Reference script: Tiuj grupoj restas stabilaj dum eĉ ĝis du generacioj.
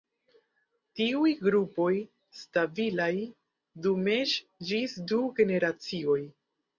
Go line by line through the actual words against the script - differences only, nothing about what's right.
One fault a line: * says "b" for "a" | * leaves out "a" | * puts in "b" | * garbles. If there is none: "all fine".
* leaves out "restas"